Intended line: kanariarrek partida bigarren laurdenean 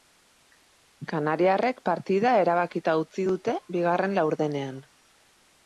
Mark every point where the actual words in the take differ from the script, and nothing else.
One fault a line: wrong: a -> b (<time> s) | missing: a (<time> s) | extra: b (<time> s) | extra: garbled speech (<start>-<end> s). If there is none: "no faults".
extra: erabakita utzi dute (2.5 s)